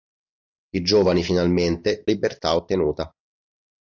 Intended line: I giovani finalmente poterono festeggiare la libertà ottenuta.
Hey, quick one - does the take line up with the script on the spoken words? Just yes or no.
no